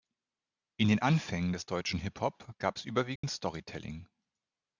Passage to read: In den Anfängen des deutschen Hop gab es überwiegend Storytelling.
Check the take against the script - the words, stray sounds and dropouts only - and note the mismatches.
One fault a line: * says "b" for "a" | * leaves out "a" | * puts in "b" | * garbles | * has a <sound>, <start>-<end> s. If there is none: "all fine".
* puts in "Hip"
* has a dropout, 3.2-3.2 s